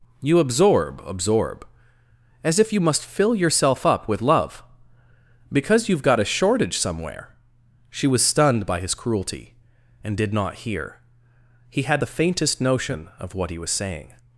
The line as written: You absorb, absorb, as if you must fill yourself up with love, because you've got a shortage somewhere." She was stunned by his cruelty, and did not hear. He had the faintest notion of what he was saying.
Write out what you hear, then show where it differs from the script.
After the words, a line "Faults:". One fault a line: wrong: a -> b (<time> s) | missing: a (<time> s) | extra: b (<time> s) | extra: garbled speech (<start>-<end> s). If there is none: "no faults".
You absorb, absorb, as if you must fill yourself up with love, because you've got a shortage somewhere." She was stunned by his cruelty, and did not hear. He had the faintest notion of what he was saying.
Faults:
no faults